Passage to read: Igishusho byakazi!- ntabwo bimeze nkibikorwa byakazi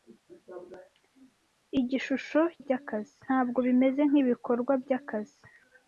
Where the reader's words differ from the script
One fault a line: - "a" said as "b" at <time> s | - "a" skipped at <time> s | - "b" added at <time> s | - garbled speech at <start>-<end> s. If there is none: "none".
none